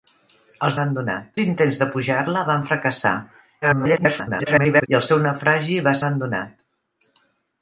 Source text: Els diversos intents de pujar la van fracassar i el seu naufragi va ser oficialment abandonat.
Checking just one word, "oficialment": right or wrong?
wrong